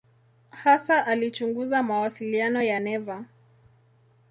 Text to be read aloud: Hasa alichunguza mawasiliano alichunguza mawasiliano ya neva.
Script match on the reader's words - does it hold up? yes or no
no